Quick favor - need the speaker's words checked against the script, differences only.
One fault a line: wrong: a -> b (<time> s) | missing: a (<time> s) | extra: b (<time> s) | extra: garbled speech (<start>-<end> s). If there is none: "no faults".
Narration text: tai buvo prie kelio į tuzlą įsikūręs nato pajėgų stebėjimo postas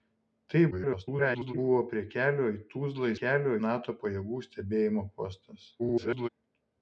extra: garbled speech (0.7-1.5 s)
wrong: įsikūręs -> kelio (3.2 s)
extra: garbled speech (5.8-6.3 s)